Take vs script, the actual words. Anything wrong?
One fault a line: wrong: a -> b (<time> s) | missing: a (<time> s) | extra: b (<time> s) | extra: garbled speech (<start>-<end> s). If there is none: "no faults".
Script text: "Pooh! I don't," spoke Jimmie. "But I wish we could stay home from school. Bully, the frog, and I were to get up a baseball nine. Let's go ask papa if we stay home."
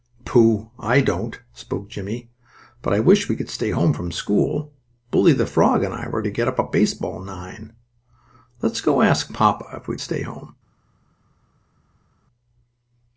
no faults